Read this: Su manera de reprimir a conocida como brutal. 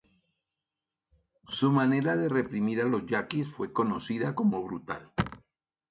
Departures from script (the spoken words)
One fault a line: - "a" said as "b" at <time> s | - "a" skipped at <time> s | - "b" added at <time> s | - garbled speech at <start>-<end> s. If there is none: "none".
- "los yaquis fue" added at 2.9 s